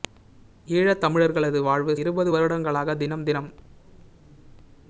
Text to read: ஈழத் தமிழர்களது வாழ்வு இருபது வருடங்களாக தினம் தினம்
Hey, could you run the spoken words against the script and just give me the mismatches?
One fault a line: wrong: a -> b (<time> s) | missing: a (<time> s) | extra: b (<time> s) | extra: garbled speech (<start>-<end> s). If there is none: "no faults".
no faults